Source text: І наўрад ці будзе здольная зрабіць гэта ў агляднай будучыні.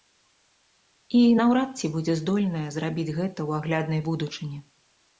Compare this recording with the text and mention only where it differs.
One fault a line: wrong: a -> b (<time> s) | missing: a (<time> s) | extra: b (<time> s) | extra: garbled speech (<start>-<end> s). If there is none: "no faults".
no faults